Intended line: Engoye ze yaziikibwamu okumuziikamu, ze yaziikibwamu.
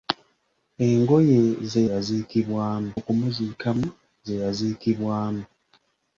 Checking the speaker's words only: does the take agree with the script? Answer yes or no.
yes